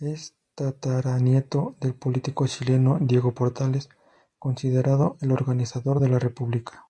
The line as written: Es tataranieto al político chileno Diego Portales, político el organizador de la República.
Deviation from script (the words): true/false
true